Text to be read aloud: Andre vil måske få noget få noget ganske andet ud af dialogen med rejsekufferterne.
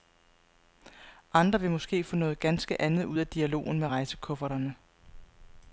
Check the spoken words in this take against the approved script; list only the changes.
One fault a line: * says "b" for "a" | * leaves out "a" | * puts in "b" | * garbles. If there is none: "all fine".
* leaves out "få noget"